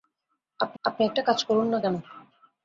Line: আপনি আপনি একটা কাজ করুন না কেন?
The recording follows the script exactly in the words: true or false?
true